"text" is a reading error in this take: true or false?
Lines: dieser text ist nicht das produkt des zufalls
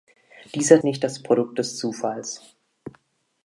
true